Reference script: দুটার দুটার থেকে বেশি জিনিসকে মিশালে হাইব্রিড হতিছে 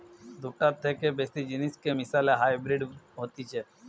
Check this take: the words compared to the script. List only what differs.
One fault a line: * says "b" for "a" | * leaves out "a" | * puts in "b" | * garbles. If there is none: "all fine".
* leaves out "দুটার"